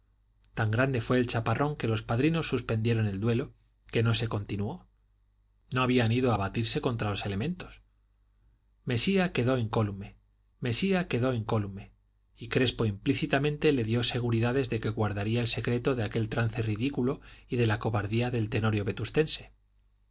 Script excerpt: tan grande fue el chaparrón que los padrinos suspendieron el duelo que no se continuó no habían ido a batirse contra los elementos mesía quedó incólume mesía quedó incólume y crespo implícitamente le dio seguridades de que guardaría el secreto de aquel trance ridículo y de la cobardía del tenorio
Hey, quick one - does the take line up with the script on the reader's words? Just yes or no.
yes